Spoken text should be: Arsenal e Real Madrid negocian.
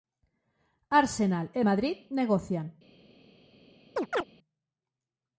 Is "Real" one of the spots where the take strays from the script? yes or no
yes